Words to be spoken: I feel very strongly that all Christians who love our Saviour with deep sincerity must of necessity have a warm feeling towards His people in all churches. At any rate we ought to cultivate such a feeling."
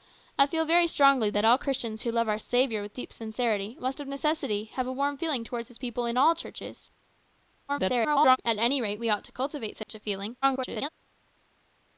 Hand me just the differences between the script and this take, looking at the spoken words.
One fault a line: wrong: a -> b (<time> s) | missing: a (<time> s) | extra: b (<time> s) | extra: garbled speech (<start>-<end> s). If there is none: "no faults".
extra: garbled speech (7.7-8.4 s)
extra: garbled speech (10.4-10.9 s)